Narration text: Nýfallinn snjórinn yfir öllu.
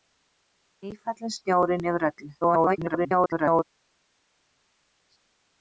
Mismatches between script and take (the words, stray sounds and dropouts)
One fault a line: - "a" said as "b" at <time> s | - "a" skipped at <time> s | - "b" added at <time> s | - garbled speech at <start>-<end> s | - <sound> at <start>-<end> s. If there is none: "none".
- garbled speech at 2.4-3.6 s